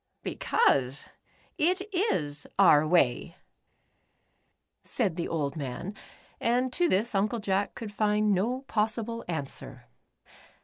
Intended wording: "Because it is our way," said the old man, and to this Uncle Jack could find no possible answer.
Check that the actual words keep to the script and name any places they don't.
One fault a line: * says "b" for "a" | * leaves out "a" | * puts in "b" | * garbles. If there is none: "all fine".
all fine